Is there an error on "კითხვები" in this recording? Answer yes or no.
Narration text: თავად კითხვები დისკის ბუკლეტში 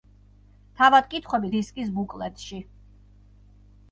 no